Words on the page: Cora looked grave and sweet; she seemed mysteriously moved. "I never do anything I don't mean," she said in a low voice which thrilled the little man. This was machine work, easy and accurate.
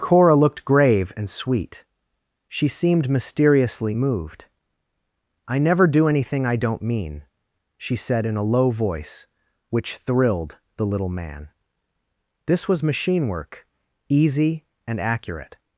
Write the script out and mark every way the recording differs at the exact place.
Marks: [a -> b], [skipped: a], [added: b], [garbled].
Cora looked grave and sweet; she seemed mysteriously moved. "I never do anything I don't mean," she said in a low voice which thrilled the little man. This was machine work, easy and accurate.